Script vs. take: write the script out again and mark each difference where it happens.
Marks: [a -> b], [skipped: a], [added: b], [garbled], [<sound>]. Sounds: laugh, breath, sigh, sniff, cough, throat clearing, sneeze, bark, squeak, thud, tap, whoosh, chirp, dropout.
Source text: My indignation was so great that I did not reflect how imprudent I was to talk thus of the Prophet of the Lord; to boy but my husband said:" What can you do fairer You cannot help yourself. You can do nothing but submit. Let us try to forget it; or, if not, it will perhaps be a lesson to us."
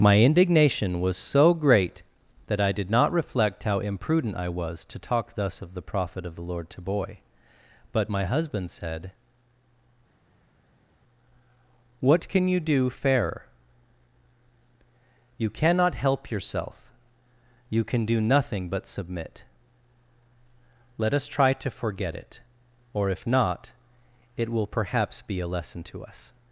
My indignation was so great that I did not reflect how imprudent I was to talk thus of the Prophet of the Lord; to boy but my husband said:" What can you do fairer You cannot help yourself. You can do nothing but submit. Let us try to forget it; or, if not, it will perhaps be a lesson to us."